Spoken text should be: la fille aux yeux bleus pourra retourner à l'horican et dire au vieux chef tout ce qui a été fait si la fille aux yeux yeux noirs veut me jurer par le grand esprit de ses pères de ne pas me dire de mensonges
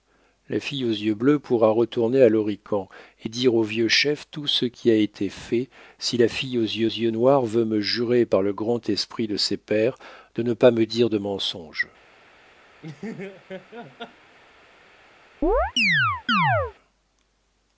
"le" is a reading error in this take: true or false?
false